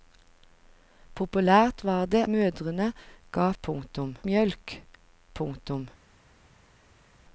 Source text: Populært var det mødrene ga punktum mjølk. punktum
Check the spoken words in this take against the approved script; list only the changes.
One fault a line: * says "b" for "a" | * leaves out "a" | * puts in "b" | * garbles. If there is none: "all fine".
all fine